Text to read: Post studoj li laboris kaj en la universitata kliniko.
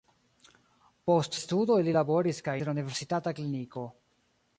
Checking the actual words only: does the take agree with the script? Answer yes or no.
yes